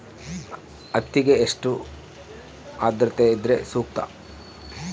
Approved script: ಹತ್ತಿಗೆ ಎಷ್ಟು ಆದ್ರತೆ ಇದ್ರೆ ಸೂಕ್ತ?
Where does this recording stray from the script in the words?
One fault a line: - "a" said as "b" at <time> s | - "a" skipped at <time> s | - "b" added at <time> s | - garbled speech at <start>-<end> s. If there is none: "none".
none